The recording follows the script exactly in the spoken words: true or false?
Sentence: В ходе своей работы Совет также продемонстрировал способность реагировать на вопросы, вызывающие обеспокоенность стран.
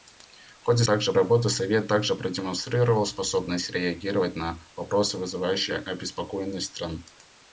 false